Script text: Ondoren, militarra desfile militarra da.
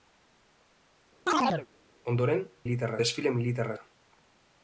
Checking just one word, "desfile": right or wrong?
right